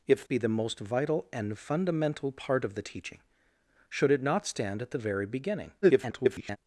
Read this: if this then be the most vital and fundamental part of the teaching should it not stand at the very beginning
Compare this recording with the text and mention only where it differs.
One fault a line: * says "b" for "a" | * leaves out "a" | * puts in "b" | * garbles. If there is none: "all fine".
* leaves out "this then"
* garbles